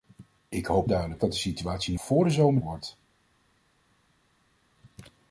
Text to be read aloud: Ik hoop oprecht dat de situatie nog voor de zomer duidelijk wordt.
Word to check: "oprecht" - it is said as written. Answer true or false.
false